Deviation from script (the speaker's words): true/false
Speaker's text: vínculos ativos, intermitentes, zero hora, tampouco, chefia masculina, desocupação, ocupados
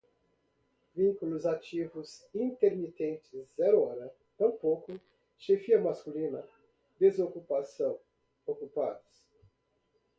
false